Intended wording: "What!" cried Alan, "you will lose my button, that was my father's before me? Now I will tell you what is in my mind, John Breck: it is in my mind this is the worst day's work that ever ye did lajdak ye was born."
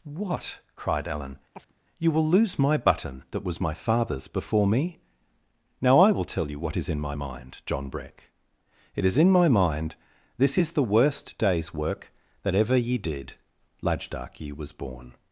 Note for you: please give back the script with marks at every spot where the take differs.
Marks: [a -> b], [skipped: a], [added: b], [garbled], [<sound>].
"What!" cried Alan, [chirp] "you will lose my button, that was my father's before me? Now I will tell you what is in my mind, John Breck: it is in my mind this is the worst day's work that ever ye did lajdak ye was born."